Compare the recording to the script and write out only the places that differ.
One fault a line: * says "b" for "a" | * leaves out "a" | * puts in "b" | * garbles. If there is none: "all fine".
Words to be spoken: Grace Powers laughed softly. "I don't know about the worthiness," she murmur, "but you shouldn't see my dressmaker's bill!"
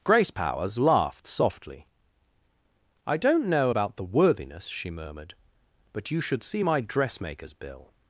* says "murmured" for "murmur"
* says "should" for "shouldn't"